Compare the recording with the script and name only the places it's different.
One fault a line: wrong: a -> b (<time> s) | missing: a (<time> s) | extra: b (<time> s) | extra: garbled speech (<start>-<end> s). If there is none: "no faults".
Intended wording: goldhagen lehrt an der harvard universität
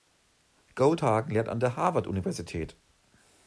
no faults